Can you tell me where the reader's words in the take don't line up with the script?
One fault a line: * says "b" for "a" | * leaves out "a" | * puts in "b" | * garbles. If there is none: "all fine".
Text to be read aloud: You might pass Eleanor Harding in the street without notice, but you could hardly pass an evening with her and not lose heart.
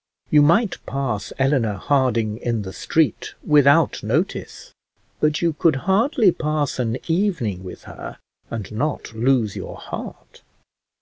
* puts in "your"